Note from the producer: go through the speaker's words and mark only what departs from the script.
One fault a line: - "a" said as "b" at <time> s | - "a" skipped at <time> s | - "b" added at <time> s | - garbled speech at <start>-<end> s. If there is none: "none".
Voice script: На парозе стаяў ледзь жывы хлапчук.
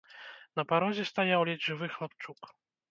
none